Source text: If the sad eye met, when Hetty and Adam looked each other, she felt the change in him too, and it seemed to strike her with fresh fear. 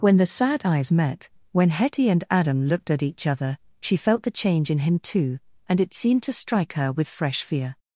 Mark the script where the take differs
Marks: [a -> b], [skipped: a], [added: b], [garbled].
[If -> When] the sad [eye -> eyes] met, when Hetty and Adam looked [added: at] each other, she felt the change in him too, and it seemed to strike her with fresh fear.